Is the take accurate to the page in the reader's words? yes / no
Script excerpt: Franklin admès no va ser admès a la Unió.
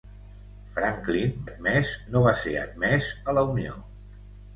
yes